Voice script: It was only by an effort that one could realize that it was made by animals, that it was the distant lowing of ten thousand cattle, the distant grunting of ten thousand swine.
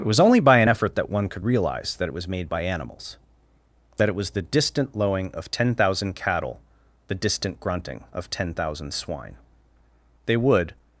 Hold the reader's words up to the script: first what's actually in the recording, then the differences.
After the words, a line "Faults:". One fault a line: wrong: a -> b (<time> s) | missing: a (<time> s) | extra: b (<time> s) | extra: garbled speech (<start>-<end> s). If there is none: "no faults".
It was only by an effort that one could realize that it was made by animals, that it was the distant lowing of ten thousand cattle, the distant grunting of ten thousand swine. They would
Faults:
extra: They would (10.3 s)